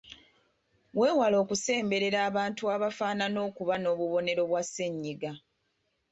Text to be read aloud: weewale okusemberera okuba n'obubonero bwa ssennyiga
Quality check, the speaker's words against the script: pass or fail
fail